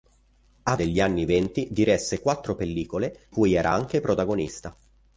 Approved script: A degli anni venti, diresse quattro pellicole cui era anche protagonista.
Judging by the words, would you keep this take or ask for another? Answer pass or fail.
pass